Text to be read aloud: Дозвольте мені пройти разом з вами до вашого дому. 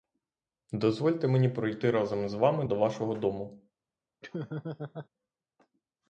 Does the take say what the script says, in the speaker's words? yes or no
yes